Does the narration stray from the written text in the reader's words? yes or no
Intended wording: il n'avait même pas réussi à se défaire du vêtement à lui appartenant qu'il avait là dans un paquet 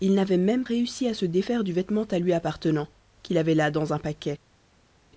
yes